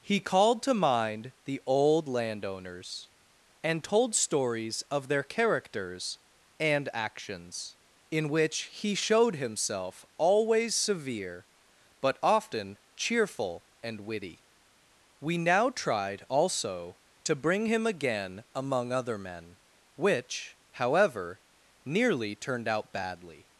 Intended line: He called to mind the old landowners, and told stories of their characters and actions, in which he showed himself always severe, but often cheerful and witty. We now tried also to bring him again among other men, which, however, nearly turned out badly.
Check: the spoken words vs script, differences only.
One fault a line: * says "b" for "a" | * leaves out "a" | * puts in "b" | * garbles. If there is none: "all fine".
all fine